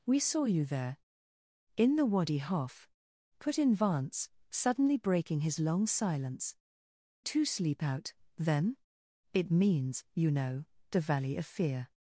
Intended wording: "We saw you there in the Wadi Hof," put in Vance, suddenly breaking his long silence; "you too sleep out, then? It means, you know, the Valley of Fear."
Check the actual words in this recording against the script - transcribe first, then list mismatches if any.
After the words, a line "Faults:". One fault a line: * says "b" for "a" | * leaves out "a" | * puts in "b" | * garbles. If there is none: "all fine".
"We saw you there in the Wadi Hof," put in Vance, suddenly breaking his long silence; "too sleep out, then? It means, you know, the Valley of Fear."
Faults:
* leaves out "you"